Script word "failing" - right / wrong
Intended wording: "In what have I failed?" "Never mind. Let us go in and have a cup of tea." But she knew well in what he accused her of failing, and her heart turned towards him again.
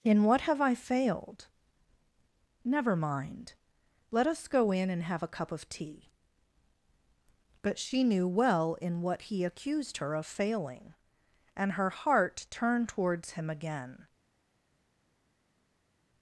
right